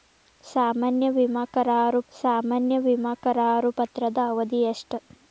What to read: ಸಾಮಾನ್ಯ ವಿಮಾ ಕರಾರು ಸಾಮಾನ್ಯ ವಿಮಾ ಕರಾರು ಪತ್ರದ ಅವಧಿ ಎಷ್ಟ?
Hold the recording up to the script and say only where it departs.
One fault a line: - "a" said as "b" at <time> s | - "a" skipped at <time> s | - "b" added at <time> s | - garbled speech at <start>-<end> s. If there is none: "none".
none